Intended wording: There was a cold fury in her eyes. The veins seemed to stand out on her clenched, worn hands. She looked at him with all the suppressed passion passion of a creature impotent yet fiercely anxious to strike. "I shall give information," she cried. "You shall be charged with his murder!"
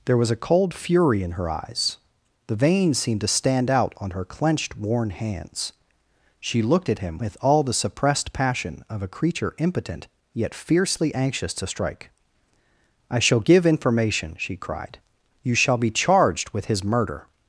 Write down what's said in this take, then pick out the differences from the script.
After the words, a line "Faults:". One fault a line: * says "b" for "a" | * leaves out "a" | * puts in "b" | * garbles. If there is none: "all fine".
There was a cold fury in her eyes. The veins seemed to stand out on her clenched, worn hands. She looked at him with all the suppressed passion of a creature impotent yet fiercely anxious to strike. "I shall give information," she cried. "You shall be charged with his murder!"
Faults:
* leaves out "passion"